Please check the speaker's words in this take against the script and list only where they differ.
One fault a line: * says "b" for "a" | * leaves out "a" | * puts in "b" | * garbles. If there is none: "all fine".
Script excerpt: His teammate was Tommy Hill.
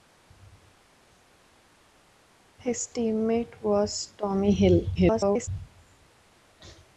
* garbles